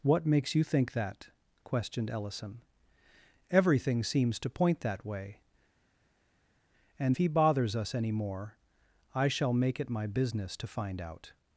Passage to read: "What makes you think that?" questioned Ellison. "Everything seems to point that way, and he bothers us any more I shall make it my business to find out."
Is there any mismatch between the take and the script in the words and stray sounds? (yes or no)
no